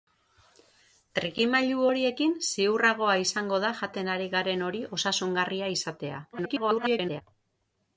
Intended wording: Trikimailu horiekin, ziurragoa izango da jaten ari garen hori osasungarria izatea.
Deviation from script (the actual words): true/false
true